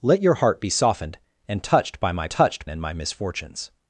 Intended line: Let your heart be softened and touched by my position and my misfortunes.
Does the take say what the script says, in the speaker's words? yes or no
no